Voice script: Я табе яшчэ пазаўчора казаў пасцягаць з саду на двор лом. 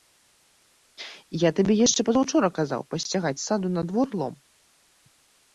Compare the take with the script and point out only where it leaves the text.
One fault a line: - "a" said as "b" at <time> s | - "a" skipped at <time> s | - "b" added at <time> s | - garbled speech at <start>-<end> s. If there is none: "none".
none